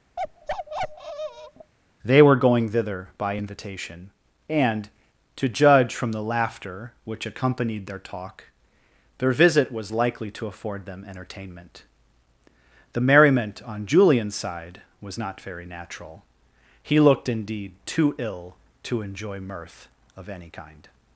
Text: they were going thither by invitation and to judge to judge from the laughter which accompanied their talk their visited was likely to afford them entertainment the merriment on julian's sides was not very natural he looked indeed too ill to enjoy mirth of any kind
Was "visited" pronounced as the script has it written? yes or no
no